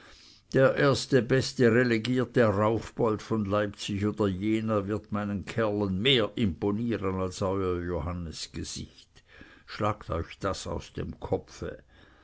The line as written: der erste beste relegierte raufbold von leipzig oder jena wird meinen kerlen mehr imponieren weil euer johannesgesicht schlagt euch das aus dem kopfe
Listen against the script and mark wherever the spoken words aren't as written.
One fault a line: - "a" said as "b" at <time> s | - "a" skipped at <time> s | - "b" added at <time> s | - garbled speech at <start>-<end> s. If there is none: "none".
- "weil" said as "als" at 7.2 s